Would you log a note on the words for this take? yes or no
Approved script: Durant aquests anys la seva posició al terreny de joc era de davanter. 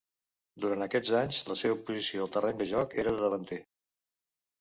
no